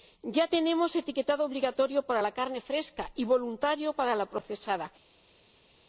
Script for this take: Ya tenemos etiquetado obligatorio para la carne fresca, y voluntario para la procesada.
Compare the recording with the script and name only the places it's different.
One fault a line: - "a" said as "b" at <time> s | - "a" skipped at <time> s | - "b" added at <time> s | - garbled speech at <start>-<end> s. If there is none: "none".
none